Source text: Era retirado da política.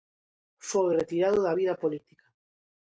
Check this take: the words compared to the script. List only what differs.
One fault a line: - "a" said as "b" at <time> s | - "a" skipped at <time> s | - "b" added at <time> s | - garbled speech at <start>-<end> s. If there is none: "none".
- "Era" said as "Foi" at 0.7 s
- "vida" added at 1.6 s